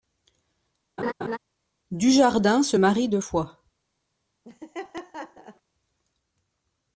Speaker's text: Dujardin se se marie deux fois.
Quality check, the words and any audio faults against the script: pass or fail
fail